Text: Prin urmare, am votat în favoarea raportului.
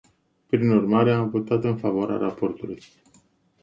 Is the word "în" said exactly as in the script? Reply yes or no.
yes